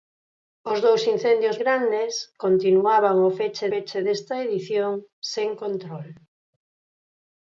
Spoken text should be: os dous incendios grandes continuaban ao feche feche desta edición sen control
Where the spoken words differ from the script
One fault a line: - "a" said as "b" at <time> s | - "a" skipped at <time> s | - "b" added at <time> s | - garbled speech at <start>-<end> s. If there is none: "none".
none